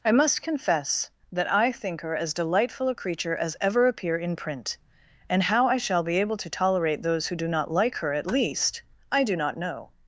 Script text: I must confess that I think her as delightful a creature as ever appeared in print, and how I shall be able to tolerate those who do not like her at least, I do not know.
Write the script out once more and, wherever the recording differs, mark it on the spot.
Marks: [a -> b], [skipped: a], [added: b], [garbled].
I must confess that I think her as delightful a creature as ever [appeared -> appear] in print, and how I shall be able to tolerate those who do not like her at least, I do not know.